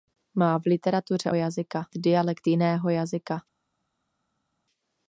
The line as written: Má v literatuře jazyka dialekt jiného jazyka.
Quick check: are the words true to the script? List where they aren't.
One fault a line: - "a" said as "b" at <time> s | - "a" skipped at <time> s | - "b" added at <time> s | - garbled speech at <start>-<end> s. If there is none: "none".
none